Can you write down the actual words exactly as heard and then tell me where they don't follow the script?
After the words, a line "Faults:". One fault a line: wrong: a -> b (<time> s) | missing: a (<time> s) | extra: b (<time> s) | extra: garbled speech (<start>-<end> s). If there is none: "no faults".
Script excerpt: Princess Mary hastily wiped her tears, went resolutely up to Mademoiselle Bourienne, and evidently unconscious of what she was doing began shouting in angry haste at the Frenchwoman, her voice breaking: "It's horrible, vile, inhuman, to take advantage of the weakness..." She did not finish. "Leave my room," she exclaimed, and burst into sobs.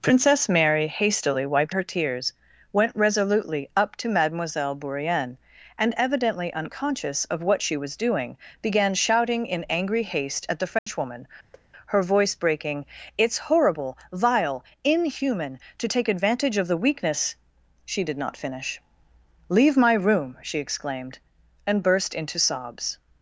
Princess Mary hastily wiped her tears, went resolutely up to Mademoiselle Bourienne, and evidently unconscious of what she was doing began shouting in angry haste at the Frenchwoman, her voice breaking: "It's horrible, vile, inhuman, to take advantage of the weakness..." She did not finish. "Leave my room," she exclaimed, and burst into sobs.
Faults:
no faults